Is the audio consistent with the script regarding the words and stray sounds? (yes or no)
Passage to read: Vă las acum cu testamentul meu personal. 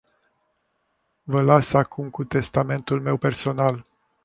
yes